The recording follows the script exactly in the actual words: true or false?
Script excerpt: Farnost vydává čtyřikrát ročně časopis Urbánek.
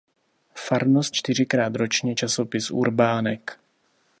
false